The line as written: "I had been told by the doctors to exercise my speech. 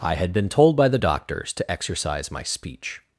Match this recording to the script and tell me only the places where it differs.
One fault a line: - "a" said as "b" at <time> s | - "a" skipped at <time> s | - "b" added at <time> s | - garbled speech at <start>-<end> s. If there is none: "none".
none